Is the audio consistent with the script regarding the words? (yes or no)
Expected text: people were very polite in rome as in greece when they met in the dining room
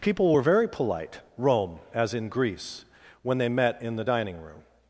no